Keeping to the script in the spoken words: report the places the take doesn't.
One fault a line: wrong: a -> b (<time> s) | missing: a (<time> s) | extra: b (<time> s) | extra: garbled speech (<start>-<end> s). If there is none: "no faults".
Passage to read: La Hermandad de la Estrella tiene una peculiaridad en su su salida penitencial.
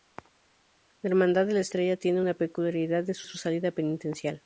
no faults